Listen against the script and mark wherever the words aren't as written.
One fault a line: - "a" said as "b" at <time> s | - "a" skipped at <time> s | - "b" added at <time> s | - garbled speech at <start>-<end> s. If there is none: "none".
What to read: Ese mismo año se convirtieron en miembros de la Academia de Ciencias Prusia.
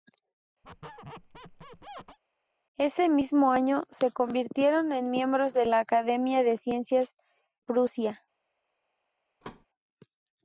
none